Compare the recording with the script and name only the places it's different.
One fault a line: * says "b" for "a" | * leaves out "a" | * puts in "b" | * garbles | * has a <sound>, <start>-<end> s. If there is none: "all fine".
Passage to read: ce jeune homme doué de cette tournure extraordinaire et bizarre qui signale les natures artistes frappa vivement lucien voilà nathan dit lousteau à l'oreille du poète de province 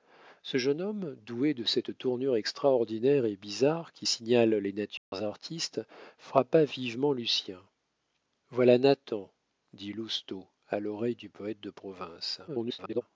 * has a dropout, 5.0-5.1 s
* garbles